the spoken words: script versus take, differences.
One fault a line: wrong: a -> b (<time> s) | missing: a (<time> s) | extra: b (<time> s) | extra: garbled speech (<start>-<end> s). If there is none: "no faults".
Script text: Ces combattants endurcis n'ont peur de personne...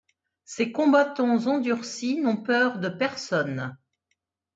no faults